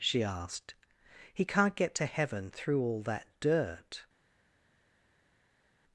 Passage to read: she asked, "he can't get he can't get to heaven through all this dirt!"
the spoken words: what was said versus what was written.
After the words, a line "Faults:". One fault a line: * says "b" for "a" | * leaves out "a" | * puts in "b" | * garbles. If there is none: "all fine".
she asked, "he can't get to heaven through all that dirt!"
Faults:
* leaves out "he can't get"
* says "that" for "this"